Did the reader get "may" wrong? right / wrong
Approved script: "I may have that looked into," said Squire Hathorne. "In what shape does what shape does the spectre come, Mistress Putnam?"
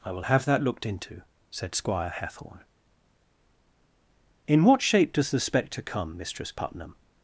wrong